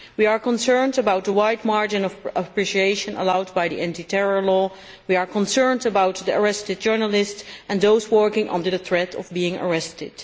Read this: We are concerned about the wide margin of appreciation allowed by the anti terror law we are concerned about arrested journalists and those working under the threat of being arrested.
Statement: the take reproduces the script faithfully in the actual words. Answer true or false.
false